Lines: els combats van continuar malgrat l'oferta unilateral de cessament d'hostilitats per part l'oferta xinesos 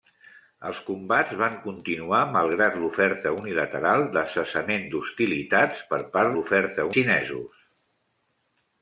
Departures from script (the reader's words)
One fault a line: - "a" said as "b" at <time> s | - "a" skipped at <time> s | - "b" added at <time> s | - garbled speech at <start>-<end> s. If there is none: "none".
none